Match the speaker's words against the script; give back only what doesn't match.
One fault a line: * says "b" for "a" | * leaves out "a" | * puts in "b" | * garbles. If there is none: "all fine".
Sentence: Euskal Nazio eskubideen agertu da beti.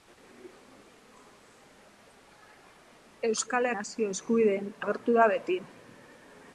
all fine